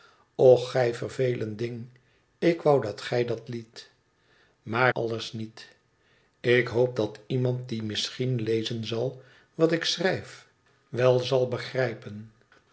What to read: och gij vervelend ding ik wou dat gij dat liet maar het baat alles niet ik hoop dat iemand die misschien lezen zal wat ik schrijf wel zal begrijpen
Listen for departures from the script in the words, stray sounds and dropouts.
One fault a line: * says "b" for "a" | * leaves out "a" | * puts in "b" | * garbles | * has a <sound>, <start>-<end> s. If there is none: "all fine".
* leaves out "het baat"